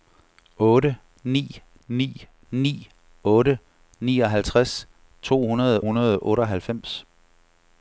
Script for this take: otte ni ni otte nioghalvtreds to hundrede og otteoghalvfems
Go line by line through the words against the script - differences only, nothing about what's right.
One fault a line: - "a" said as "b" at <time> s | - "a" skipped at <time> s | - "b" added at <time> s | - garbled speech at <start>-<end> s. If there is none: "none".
- "ni" added at 2.5 s
- "hundrede" added at 5.8 s